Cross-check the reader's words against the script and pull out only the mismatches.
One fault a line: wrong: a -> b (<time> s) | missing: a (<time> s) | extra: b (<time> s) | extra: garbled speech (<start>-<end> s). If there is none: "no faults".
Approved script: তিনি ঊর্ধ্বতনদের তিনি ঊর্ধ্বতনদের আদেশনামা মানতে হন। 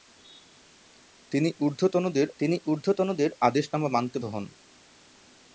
no faults